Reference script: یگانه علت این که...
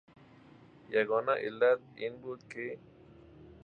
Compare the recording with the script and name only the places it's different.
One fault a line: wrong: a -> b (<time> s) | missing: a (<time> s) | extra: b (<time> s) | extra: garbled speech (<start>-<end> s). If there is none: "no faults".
extra: بود (2.2 s)